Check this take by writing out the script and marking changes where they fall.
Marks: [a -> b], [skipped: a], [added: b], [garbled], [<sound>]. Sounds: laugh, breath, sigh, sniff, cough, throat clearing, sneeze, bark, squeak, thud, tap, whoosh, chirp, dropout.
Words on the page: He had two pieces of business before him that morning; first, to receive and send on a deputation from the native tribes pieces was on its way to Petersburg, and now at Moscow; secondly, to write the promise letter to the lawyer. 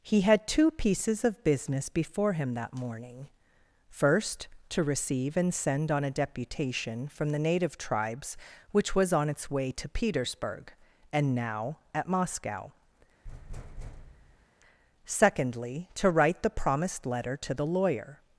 He had two pieces of business before him that morning; first, to receive and send on a deputation from the native tribes [pieces -> which] was on its way to Petersburg, and now at Moscow; [thud] secondly, to write the [promise -> promised] letter to the lawyer.